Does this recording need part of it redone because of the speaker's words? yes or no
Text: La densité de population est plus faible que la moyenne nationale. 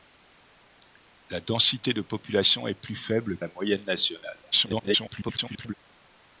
yes